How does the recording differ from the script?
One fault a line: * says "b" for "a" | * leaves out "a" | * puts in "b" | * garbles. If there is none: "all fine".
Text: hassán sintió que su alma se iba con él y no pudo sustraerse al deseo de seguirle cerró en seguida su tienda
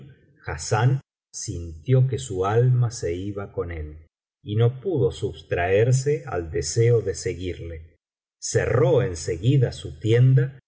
all fine